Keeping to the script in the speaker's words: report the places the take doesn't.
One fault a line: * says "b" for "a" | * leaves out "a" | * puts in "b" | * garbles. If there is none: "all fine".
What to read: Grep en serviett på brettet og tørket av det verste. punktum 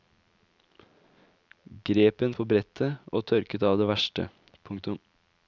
* leaves out "serviett"